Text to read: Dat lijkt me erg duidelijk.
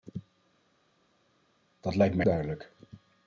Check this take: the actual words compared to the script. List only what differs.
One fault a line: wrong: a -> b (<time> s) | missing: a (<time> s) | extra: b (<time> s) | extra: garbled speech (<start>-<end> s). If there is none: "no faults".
missing: erg (2.2 s)